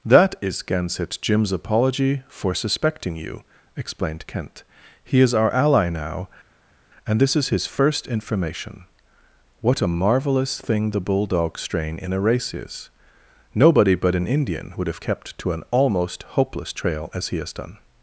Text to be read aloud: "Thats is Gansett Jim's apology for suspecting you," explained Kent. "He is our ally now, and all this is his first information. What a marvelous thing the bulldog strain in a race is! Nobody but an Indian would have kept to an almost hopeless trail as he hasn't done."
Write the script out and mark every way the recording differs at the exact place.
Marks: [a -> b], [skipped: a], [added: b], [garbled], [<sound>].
["Thats -> That] is Gansett Jim's apology for suspecting you," explained Kent. "He is our ally now, and [skipped: all] this is his first information. What a marvelous thing the bulldog strain in a race is! Nobody but an Indian would have kept to an almost hopeless trail as he [hasn't -> has] done."